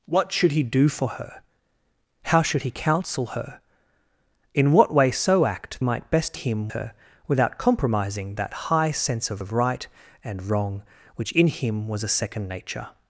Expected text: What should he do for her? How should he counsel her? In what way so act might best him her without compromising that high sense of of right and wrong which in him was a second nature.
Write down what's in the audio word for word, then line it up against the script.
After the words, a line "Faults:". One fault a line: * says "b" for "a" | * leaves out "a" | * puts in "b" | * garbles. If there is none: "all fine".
What should he do for her? How should he counsel her? In what way so act might best him her without compromising that high sense of of right and wrong which in him was a second nature.
Faults:
all fine